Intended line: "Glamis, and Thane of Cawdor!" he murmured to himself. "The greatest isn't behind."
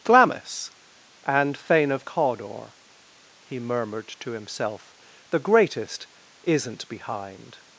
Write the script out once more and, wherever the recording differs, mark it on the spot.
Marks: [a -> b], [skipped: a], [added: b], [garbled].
"Glamis, and Thane of Cawdor!" he murmured to himself. "The greatest isn't behind."